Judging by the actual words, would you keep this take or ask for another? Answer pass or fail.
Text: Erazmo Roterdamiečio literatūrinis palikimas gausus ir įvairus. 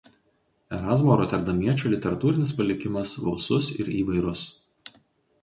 pass